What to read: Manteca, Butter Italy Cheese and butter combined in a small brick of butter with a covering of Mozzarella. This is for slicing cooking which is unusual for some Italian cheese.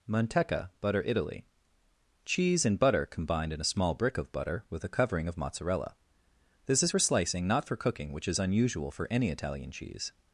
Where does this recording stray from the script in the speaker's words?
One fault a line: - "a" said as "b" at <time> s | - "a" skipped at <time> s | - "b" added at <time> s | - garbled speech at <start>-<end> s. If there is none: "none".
- "not for" added at 7.5 s
- "some" said as "any" at 9.1 s